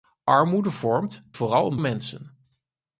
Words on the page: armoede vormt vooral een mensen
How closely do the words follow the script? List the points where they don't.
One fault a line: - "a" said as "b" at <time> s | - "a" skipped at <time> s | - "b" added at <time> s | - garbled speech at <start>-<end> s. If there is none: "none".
none